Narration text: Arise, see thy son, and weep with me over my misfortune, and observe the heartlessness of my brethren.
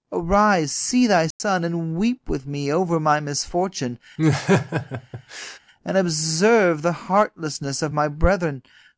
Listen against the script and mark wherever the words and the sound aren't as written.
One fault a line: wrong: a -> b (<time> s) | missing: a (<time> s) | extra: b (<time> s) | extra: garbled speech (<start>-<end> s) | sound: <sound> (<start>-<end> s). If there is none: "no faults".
sound: dropout (1.3-1.4 s)
sound: laugh (4.2-5.6 s)